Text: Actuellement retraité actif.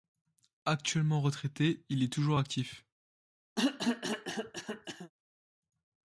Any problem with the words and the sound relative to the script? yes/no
yes